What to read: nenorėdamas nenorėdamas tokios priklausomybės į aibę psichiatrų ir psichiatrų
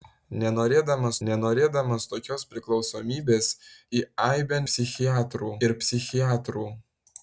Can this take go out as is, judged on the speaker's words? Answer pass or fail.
pass